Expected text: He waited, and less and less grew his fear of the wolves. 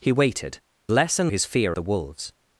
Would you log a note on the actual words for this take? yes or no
yes